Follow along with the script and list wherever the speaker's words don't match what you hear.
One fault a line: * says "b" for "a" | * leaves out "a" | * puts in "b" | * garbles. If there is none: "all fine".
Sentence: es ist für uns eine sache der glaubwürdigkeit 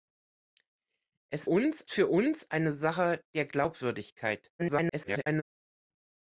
* says "uns" for "ist"
* garbles